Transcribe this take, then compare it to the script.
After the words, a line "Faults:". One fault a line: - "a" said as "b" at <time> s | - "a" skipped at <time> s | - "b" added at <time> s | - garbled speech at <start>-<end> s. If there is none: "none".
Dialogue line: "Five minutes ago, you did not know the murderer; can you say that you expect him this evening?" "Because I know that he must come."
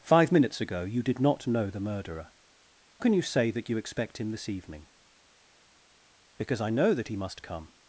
"Five minutes ago, you did not know the murderer; can you say that you expect him this evening?" "Because I know that he must come."
Faults:
none